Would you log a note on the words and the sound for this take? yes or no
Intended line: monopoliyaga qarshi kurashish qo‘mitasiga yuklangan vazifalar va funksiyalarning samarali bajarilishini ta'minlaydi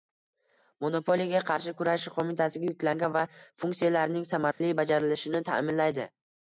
yes